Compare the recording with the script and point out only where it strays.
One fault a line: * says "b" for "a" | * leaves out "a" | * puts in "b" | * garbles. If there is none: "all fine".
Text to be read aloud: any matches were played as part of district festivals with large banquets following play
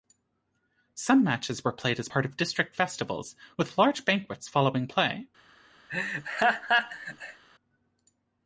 * says "some" for "any"